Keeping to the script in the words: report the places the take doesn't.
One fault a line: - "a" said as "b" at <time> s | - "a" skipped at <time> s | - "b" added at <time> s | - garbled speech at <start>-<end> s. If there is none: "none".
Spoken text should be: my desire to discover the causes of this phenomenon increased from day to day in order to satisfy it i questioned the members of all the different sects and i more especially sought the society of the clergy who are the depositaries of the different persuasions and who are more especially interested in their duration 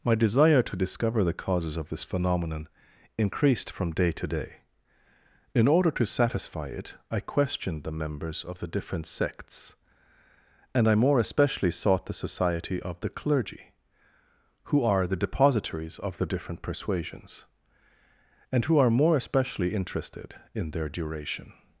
- "all" skipped at 8.6 s